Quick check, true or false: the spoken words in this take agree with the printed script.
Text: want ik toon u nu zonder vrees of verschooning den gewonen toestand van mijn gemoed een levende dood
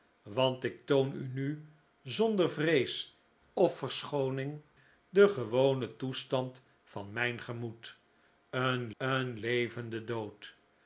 false